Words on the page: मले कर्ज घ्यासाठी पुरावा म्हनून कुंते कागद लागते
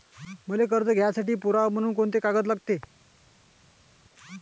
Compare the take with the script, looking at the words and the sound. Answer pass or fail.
pass